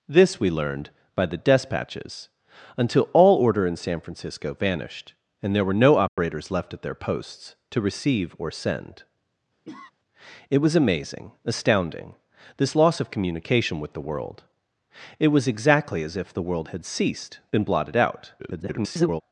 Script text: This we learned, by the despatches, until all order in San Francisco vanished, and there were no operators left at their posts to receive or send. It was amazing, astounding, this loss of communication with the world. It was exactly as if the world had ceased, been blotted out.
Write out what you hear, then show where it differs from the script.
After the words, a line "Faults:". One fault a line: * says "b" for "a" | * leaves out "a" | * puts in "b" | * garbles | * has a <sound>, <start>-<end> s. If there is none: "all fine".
This we learned, by the despatches, until all order in San Francisco vanished, and there were no operators left at their posts to receive or send. It was amazing, astounding, this loss of communication with the world. It was exactly as if the world had ceased, been blotted out. [garbled]
Faults:
* has a dropout, 6.1-6.2 s
* has a cough, 9.7-9.9 s
* garbles